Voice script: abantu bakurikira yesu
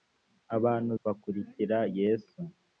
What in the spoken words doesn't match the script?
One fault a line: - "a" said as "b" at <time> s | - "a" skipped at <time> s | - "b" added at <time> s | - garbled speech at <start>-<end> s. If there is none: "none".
none